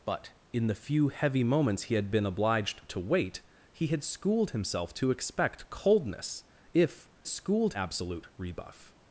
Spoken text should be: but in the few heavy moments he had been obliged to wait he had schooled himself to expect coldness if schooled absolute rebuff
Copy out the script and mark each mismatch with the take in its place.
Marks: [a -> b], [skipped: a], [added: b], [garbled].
but in the few heavy moments he had been obliged to wait he had schooled himself to expect coldness if schooled absolute rebuff